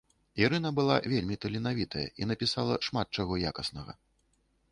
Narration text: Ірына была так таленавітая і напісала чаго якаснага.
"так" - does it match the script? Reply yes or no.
no